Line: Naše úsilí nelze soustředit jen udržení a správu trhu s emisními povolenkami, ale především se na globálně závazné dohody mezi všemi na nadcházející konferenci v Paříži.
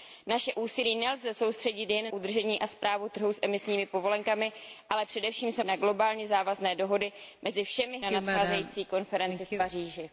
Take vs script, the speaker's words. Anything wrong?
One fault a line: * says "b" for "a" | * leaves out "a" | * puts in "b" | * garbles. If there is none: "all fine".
all fine